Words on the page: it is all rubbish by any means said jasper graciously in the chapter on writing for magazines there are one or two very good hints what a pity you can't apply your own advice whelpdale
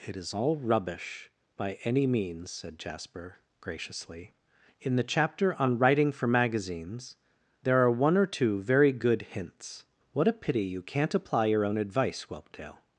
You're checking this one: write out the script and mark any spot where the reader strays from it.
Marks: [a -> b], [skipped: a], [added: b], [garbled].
it is all rubbish by any means said jasper graciously in the chapter on writing for magazines there are one or two very good hints what a pity you can't apply your own advice whelpdale